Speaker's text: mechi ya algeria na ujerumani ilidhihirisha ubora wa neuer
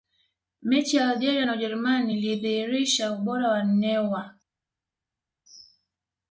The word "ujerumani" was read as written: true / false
true